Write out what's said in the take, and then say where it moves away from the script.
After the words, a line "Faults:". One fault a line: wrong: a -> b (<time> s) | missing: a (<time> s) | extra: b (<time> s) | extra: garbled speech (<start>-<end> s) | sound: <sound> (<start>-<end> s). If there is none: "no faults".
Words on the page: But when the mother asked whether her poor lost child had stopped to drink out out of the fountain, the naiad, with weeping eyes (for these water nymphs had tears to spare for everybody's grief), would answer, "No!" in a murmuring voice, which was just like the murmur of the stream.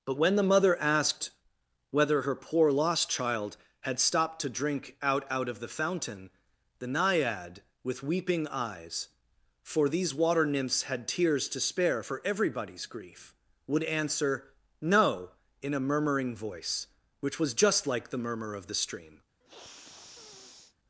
But when the mother asked whether her poor lost child had stopped to drink out out of the fountain, the naiad, with weeping eyes (for these water nymphs had tears to spare for everybody's grief), would answer, "No!" in a murmuring voice, which was just like the murmur of the stream.
Faults:
sound: sniff (19.4-20.8 s)